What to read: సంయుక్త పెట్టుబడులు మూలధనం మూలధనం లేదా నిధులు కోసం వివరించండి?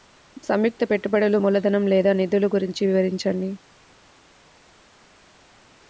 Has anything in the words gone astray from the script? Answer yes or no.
yes